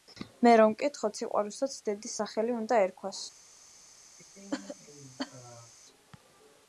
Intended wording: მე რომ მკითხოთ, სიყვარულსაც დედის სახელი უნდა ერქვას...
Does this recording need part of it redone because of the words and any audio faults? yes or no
yes